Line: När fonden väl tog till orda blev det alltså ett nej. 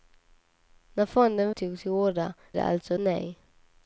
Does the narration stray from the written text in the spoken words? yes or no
yes